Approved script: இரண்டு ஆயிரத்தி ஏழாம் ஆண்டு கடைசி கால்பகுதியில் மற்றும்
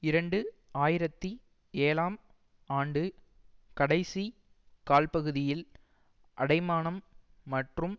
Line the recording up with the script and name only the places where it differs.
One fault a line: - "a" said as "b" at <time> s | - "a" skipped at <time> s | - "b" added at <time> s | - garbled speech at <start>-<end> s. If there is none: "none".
- "அடைமானம்" added at 6.4 s